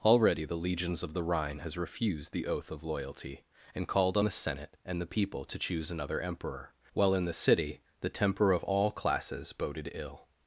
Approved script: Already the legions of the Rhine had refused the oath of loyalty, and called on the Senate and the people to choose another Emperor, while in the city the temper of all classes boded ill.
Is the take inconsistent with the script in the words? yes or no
yes